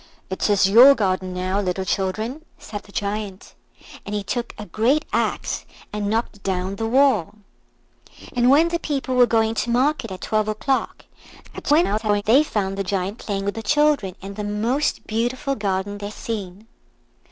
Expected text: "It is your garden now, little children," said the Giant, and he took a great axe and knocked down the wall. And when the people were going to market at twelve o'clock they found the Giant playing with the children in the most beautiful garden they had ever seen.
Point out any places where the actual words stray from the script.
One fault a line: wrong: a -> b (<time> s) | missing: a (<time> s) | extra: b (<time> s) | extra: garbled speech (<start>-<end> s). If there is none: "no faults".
extra: garbled speech (11.4-12.2 s)
missing: had ever (16.1 s)